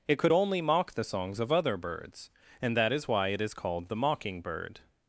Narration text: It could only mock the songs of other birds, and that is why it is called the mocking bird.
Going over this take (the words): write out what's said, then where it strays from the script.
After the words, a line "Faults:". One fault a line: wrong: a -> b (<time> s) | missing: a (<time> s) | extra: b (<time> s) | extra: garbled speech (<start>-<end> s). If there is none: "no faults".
It could only mock the songs of other birds, and that is why it is called the mocking bird.
Faults:
no faults